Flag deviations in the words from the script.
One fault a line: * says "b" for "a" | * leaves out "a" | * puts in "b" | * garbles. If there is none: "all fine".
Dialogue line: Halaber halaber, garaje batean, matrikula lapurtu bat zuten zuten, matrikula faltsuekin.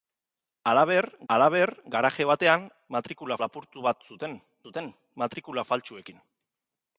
all fine